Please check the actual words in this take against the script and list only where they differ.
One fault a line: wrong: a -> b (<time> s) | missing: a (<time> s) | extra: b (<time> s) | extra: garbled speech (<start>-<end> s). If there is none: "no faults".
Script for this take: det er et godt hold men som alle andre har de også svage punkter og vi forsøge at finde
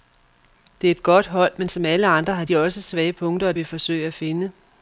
no faults